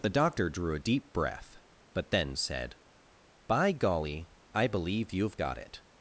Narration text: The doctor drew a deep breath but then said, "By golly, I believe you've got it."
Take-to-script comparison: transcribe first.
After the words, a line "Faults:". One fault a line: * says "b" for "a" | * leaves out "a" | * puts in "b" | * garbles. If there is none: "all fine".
The doctor drew a deep breath but then said, "By golly, I believe you've got it."
Faults:
all fine